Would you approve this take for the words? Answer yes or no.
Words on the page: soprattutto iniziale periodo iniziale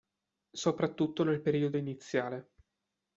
no